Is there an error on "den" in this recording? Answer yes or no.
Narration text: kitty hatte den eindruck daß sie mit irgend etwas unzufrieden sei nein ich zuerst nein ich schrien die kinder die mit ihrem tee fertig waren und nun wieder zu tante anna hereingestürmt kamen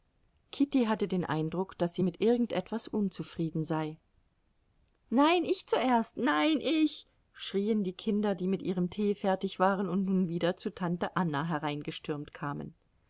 no